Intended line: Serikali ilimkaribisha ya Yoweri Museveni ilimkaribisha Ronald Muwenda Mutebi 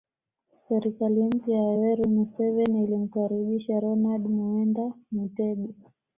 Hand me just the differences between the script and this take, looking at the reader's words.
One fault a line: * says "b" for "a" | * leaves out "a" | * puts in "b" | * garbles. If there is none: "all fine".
* says "mpya" for "ilimkaribisha"